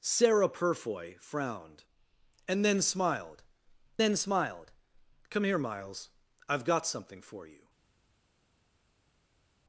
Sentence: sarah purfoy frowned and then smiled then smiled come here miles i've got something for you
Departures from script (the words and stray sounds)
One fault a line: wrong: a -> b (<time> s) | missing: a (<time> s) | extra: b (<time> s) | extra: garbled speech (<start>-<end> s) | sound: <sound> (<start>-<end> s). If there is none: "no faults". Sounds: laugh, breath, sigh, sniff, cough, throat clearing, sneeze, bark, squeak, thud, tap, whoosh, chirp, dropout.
no faults